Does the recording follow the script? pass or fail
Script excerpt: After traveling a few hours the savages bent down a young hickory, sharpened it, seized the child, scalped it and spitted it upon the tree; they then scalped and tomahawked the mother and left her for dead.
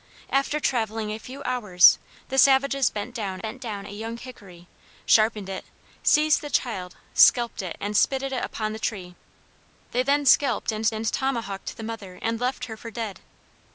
fail